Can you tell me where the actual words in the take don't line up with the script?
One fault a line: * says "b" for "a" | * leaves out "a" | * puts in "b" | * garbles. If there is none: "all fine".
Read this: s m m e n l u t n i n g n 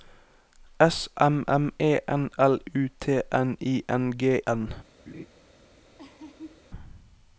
all fine